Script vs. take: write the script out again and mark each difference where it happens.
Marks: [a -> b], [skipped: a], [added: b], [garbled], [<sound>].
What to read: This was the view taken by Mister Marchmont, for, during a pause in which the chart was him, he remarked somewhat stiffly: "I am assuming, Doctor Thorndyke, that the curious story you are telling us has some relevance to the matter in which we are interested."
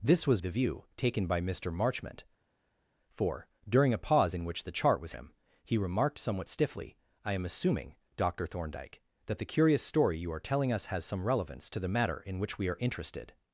This was the view taken by Mister Marchmont, for, during a pause in which the chart was him, he remarked somewhat stiffly: "I am assuming, Doctor Thorndyke, that the curious story you are telling us has some relevance to the matter in which we are interested."